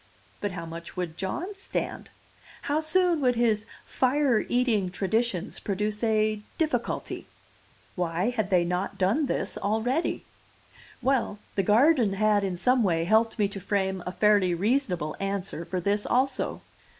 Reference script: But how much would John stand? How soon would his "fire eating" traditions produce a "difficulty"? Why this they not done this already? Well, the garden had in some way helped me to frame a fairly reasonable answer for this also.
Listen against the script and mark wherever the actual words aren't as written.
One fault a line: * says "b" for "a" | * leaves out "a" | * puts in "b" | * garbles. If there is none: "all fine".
* says "had" for "this"